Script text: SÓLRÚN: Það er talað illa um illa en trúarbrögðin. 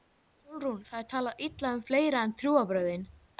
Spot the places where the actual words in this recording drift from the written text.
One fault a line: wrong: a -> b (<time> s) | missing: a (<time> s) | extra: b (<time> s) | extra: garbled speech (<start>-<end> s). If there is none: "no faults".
wrong: illa -> fleira (1.9 s)